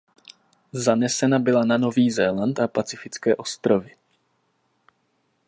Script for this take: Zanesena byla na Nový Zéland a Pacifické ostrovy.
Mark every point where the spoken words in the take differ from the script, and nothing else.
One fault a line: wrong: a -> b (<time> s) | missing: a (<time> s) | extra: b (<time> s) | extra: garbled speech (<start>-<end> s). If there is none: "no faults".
no faults